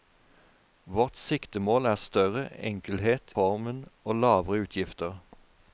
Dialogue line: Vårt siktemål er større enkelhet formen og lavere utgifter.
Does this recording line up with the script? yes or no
yes